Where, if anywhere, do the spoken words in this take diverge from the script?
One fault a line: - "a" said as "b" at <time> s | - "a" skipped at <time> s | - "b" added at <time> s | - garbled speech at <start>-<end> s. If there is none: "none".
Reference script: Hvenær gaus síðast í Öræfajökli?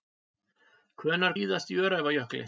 - "gaus" skipped at 1.4 s